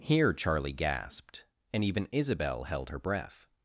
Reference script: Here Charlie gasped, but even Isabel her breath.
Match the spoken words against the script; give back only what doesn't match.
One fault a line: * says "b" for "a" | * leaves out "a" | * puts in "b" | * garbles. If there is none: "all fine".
* says "and" for "but"
* puts in "held"